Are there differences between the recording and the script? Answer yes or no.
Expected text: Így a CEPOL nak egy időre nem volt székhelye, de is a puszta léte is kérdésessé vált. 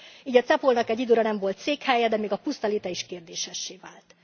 yes